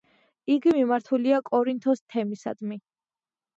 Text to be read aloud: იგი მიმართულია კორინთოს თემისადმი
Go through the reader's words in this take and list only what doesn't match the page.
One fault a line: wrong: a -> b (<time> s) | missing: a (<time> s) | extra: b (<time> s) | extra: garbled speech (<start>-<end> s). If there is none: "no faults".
no faults